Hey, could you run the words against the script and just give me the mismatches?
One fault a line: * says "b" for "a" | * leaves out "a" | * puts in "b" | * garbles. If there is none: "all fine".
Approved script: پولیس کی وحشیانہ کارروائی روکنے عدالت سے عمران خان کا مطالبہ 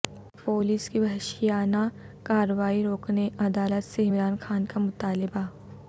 all fine